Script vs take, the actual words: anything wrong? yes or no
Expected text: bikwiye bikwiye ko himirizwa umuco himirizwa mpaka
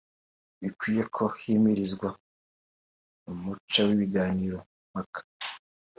yes